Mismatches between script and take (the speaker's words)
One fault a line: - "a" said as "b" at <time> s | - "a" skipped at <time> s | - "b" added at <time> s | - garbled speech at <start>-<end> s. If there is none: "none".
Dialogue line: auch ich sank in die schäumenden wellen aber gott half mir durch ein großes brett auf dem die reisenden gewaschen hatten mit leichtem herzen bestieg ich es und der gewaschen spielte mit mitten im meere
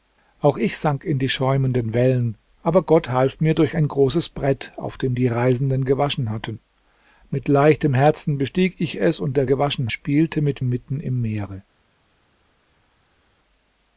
none